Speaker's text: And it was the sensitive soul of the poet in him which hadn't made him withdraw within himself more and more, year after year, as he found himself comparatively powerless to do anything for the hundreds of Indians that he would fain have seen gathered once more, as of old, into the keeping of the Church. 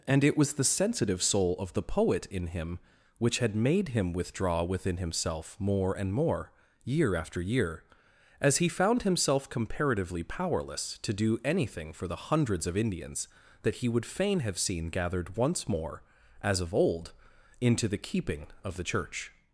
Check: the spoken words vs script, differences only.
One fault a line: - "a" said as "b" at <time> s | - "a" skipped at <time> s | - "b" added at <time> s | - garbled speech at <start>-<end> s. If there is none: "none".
- "hadn't" said as "had" at 3.4 s